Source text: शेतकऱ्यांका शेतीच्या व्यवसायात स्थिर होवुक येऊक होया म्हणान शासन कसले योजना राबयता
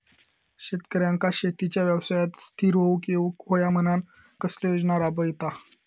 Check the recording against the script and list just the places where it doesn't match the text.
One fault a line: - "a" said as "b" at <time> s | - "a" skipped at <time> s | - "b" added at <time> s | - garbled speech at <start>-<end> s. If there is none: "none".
- "शासन" skipped at 4.0 s